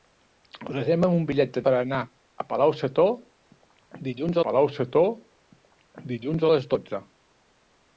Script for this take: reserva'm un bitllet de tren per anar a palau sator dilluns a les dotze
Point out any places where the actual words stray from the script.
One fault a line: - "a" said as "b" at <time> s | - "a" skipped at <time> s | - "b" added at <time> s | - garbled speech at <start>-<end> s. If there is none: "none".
- "tren" skipped at 1.6 s
- "palau sator dilluns" added at 4.4 s